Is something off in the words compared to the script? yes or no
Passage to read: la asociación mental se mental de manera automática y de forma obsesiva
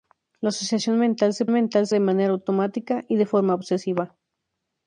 no